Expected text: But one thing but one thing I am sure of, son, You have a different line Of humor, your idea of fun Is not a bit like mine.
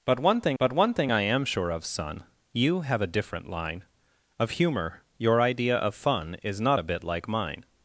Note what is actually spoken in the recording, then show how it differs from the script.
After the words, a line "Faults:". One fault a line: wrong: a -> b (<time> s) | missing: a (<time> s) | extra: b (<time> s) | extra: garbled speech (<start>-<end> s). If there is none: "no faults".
But one thing but one thing I am sure of, son, You have a different line Of humor, your idea of fun Is not a bit like mine.
Faults:
no faults